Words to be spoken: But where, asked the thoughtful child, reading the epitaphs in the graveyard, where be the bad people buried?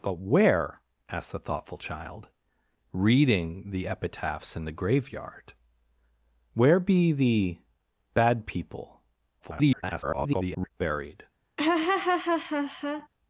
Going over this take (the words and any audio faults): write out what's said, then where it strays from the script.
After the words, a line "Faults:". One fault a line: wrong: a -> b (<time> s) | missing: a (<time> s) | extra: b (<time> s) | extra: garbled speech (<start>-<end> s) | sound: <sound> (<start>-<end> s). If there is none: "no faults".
But where, asked the thoughtful child, reading the epitaphs in the graveyard, where be the bad people [garbled] buried?
Faults:
extra: garbled speech (9.4-10.7 s)
sound: laugh (11.6-13.1 s)